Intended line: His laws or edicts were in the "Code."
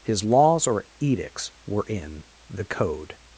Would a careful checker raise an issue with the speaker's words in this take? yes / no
no